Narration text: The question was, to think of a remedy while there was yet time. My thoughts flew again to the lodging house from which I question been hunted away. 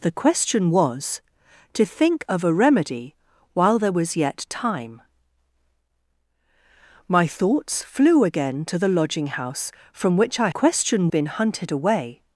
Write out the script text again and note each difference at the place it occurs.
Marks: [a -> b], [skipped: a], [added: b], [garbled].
The question was, to think of a remedy while there was yet time. My thoughts flew again to the lodging house from which I question been hunted away.